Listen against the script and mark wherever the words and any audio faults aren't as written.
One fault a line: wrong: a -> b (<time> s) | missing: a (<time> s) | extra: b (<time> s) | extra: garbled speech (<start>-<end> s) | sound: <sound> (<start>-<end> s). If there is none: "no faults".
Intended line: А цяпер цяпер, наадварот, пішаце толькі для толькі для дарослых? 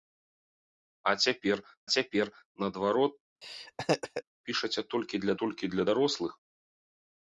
sound: laugh (3.4-4.2 s)